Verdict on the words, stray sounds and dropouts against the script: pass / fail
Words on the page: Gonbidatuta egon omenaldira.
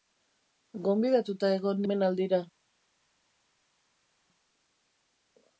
pass